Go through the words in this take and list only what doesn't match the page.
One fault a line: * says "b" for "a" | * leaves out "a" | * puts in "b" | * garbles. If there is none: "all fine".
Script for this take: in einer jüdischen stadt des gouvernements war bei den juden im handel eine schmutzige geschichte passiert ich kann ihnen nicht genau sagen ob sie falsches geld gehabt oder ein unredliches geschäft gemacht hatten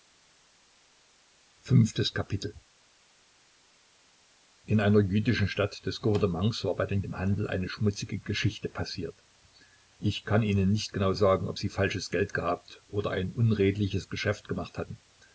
* leaves out "juden"